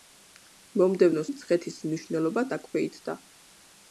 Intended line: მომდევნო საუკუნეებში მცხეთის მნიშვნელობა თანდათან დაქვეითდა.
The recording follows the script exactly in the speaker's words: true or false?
false